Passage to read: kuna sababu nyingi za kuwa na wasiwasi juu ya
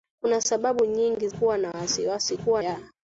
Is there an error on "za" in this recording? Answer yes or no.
yes